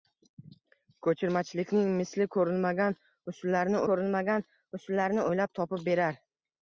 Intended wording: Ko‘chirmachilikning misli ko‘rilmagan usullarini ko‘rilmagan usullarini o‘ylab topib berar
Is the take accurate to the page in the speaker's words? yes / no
yes